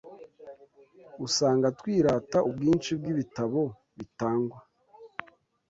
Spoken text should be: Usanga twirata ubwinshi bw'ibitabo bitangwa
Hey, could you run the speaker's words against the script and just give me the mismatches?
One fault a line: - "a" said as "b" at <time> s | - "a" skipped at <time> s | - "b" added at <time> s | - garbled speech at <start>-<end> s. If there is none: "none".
none